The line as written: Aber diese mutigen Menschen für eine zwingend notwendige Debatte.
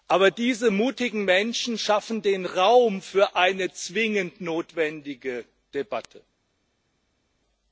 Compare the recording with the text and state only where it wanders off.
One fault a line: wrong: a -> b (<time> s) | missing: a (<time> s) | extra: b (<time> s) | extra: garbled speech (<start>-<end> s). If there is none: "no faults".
extra: schaffen den Raum (1.8 s)